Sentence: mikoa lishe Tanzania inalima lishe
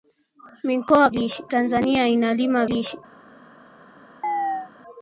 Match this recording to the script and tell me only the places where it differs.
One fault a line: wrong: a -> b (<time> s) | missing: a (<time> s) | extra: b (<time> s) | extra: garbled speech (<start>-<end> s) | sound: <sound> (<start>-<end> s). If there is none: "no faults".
sound: chirp (4.2-4.7 s)